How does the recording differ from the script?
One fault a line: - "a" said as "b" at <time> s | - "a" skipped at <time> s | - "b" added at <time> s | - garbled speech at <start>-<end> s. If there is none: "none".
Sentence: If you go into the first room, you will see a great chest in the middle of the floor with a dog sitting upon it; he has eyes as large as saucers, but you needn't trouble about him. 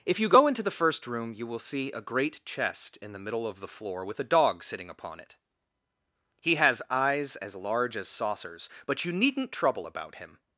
none